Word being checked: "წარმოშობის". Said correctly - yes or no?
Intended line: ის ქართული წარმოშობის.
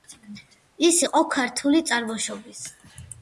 yes